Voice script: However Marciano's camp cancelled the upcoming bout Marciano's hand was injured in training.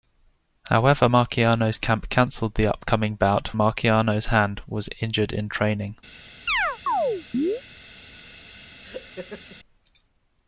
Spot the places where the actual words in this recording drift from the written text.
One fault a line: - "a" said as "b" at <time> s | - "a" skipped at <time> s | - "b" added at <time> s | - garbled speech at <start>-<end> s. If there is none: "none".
none